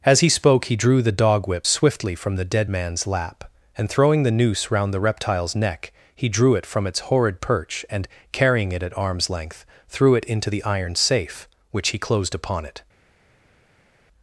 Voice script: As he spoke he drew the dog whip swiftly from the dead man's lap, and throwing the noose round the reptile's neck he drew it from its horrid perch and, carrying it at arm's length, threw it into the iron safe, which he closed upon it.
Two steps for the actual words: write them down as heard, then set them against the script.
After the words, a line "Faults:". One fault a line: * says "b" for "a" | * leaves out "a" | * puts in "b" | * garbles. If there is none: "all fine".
As he spoke he drew the dog whip swiftly from the dead man's lap, and throwing the noose round the reptile's neck he drew it from its horrid perch and, carrying it at arm's length, threw it into the iron safe, which he closed upon it.
Faults:
all fine